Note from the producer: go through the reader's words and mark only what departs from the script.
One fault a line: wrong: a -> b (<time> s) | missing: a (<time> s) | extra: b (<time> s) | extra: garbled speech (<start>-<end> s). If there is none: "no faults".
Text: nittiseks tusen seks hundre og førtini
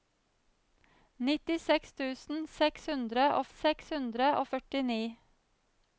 extra: seks hundre og (3.6 s)